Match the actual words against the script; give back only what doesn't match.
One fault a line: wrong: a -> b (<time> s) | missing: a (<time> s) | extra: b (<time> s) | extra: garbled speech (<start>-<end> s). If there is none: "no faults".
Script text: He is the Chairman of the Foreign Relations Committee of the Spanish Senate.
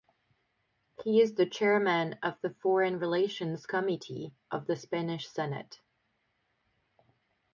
no faults